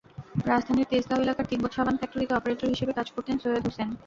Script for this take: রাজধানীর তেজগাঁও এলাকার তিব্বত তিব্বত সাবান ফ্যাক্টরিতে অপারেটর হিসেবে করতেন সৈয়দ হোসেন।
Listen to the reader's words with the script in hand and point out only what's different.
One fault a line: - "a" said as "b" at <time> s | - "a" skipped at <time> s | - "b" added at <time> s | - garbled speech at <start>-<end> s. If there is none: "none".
- "তিব্বত" skipped at 1.7 s
- "কাজ" added at 3.0 s